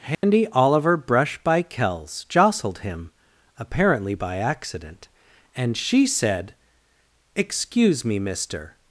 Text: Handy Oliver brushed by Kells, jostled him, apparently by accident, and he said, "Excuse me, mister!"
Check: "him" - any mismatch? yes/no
no